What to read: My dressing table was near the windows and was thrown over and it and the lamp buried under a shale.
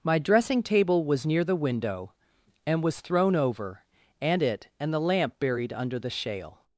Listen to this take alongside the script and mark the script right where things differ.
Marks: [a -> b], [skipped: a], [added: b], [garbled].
My dressing table was near the [windows -> window] and was thrown over and it and the lamp buried under [a -> the] shale.